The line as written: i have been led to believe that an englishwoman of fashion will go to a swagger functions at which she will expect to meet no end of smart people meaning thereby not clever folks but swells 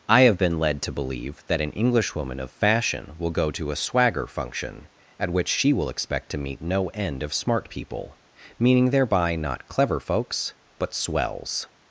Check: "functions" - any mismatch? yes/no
yes